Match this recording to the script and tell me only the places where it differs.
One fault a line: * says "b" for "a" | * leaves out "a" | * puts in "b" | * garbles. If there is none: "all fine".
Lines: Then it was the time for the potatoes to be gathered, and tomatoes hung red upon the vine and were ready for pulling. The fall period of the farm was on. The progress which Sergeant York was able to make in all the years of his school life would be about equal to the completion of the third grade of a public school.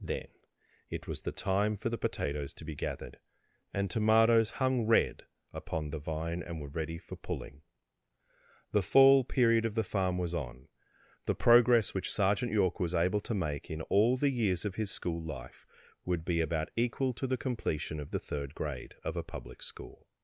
all fine